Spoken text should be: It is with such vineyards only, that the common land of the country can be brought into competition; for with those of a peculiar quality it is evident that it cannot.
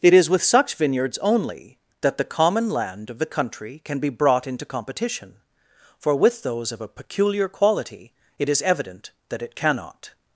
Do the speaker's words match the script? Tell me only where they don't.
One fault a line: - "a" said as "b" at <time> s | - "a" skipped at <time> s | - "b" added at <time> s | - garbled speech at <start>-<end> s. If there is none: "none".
none